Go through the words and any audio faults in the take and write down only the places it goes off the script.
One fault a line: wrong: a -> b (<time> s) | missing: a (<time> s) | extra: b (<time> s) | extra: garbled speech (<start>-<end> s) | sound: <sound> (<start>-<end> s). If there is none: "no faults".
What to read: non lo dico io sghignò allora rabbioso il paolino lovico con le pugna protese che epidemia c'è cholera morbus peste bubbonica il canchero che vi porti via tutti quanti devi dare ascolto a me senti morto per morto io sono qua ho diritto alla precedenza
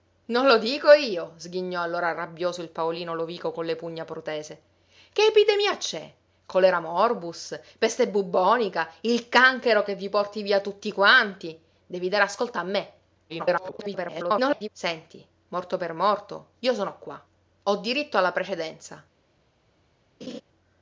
extra: garbled speech (13.3-14.7 s)
sound: laugh (20.2-20.4 s)